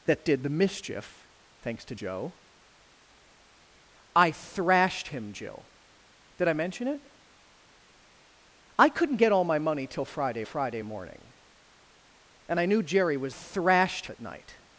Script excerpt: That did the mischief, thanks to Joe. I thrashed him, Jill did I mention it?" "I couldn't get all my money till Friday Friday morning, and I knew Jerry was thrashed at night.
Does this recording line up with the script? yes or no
yes